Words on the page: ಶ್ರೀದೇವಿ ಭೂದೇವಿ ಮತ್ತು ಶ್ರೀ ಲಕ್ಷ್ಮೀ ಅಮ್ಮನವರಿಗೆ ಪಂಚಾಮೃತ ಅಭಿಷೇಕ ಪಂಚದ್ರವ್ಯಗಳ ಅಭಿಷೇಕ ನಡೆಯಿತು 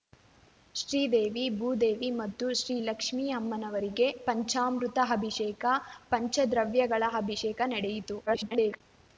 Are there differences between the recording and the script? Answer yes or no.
yes